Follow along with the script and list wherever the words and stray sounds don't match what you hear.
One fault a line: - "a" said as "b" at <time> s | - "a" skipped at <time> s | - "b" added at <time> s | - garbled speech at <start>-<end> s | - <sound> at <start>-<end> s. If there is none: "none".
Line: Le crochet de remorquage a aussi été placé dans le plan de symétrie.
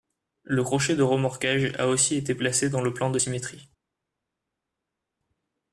none